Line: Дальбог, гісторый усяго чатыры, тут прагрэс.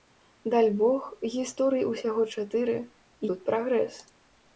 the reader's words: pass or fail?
pass